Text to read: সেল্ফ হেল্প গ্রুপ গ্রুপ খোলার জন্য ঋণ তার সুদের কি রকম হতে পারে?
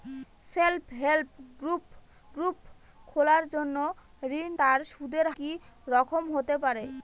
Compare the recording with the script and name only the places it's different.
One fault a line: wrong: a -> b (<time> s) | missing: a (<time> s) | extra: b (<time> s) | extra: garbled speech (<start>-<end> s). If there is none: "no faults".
no faults